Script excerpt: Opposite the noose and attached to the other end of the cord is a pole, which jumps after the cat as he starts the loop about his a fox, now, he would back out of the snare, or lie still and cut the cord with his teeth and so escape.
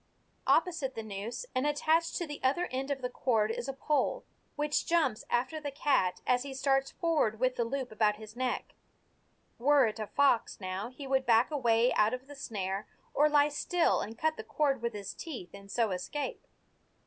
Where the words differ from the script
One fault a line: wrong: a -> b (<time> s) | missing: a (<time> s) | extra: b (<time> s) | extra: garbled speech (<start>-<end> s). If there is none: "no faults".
extra: forward with (6.9 s)
extra: neck Were it (8.3 s)
extra: away (11.5 s)